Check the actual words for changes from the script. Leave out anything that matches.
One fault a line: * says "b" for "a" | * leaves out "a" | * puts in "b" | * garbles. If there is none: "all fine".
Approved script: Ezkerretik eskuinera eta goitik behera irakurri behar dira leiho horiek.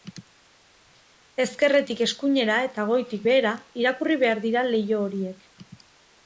all fine